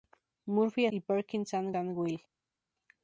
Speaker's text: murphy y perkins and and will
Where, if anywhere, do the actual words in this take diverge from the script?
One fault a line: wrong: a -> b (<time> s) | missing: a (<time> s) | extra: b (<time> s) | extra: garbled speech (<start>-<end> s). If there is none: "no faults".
no faults